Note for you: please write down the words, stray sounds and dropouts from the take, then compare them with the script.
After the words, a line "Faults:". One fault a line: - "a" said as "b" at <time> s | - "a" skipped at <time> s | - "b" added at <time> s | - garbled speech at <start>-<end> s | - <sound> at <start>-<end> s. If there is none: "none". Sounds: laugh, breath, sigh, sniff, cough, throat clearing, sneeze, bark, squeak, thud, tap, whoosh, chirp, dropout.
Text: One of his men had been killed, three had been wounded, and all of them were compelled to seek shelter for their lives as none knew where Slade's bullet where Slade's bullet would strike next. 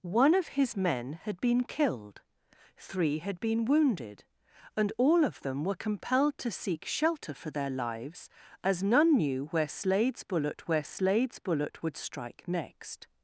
One of his men had been killed, three had been wounded, and all of them were compelled to seek shelter for their lives as none knew where Slade's bullet where Slade's bullet would strike next.
Faults:
none